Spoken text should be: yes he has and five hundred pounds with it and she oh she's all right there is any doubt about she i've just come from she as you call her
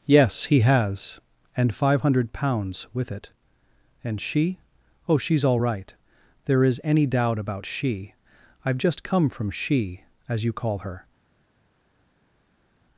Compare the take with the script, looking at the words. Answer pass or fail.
pass